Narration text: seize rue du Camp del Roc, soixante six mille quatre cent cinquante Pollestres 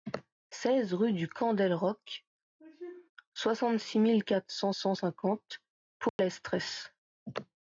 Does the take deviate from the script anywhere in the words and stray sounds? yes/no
yes